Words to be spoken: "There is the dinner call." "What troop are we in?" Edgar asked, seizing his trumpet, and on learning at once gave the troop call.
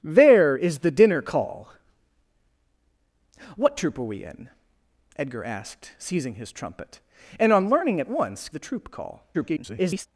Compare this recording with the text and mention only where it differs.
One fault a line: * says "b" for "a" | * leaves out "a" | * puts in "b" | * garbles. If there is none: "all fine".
* leaves out "gave"
* garbles